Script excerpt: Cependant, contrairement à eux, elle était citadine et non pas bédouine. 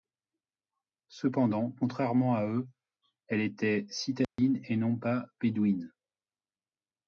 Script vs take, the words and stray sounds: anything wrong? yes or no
yes